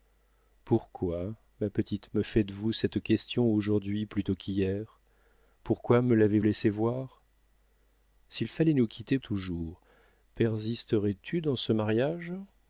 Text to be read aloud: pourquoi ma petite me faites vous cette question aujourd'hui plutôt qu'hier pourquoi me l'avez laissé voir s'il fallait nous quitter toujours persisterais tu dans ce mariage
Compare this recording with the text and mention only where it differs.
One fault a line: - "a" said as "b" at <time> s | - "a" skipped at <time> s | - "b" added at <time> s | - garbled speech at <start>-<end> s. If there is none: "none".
none